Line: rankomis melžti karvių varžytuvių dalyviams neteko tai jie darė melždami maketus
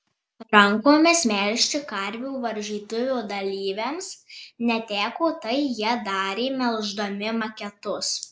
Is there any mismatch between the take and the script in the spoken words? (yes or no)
no